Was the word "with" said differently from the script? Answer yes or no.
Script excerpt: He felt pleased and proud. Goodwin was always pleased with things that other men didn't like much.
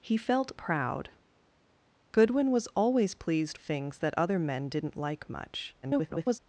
yes